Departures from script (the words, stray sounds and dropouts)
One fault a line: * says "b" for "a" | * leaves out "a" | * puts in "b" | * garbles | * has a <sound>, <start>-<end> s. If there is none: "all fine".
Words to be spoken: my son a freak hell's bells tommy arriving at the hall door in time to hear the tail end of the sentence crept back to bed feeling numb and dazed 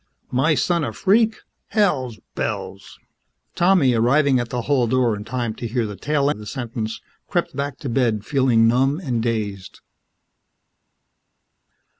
* leaves out "end"